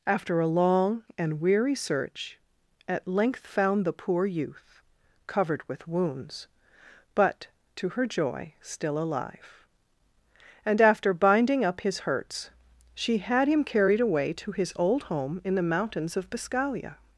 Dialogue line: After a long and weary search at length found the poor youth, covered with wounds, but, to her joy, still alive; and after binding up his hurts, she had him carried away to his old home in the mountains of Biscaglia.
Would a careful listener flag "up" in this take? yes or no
no